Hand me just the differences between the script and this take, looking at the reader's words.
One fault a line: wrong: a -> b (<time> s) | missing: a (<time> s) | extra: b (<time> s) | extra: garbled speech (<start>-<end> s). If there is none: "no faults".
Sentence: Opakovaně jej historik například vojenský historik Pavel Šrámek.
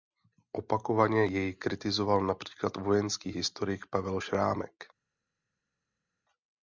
wrong: historik -> kritizoval (1.5 s)